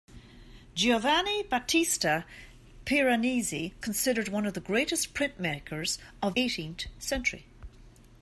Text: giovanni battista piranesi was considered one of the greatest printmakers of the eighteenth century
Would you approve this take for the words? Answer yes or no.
no